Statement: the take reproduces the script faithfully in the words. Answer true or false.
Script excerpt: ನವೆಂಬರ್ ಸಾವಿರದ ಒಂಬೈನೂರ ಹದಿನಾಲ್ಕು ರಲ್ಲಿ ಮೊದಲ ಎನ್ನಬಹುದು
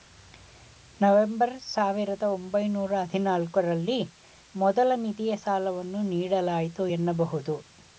false